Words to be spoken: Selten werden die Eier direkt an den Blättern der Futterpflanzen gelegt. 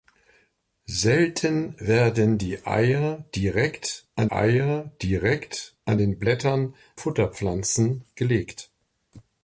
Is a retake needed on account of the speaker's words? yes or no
yes